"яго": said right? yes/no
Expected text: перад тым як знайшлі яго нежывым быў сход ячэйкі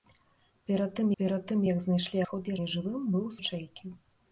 no